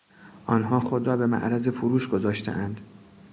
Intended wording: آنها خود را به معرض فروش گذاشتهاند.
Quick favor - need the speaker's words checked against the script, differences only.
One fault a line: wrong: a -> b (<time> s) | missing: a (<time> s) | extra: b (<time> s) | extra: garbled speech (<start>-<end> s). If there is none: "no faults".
no faults